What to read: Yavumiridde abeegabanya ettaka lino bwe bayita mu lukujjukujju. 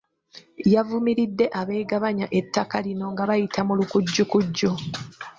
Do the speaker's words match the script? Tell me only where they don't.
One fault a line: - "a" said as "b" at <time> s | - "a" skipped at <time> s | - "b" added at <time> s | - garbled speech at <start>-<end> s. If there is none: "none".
- "bwe" said as "nga" at 3.1 s